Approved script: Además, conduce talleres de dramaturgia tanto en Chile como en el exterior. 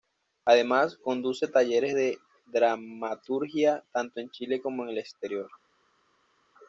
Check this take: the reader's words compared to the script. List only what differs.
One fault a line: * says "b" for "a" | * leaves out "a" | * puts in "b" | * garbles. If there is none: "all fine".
all fine